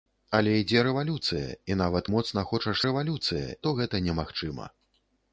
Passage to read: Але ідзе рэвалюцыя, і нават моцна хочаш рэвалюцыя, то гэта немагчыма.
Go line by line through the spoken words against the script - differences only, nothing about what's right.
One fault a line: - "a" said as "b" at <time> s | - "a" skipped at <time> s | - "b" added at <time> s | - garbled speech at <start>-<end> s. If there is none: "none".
none